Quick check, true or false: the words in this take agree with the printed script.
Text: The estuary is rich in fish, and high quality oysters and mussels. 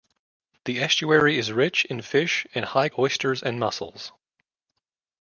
false